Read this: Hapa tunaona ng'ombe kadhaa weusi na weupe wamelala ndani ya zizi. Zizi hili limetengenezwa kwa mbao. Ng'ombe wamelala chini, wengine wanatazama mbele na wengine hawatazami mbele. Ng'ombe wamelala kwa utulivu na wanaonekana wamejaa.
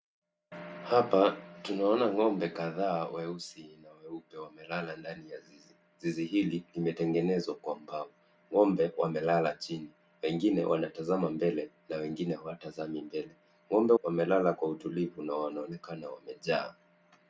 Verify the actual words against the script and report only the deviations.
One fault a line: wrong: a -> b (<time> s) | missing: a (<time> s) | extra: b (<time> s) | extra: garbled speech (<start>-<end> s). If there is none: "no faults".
no faults